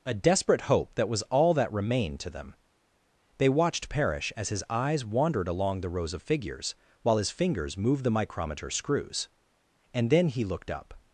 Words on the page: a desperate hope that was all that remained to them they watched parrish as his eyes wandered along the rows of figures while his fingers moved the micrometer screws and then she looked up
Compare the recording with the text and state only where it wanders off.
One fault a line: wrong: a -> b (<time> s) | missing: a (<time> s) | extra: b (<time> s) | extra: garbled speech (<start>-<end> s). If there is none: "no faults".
wrong: she -> he (10.3 s)